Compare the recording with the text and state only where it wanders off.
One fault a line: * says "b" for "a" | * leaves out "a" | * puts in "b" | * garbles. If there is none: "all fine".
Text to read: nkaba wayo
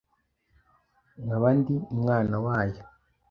* puts in "ndi umwana"